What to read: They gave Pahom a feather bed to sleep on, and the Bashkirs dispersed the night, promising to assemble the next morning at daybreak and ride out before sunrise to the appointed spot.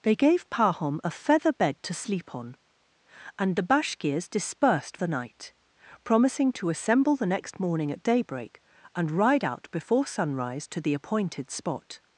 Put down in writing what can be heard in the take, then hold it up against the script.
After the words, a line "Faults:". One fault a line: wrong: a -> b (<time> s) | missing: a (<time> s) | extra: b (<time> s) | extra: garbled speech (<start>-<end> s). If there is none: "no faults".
They gave Pahom a feather bed to sleep on, and the Bashkirs dispersed the night, promising to assemble the next morning at daybreak and ride out before sunrise to the appointed spot.
Faults:
no faults